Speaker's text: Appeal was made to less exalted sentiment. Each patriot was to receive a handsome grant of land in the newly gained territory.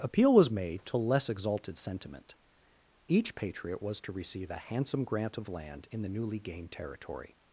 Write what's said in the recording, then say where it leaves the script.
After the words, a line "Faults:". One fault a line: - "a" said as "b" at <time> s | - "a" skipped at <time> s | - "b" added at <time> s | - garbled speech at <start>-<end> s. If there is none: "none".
Appeal was made to less exalted sentiment. Each patriot was to receive a handsome grant of land in the newly gained territory.
Faults:
none